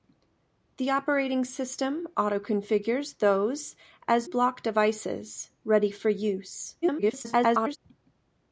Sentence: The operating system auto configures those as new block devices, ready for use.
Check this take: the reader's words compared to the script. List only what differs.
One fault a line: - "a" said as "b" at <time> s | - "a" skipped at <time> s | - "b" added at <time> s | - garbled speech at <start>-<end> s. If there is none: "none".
- "new" skipped at 4.3 s
- garbled speech at 6.8-7.8 s